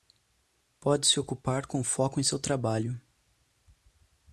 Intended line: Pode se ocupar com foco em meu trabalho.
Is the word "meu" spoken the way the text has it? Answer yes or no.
no